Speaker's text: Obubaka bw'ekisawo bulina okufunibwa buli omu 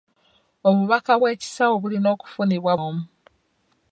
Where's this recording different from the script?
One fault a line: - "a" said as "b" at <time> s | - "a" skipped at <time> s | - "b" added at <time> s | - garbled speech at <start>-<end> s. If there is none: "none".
- "buli" skipped at 2.7 s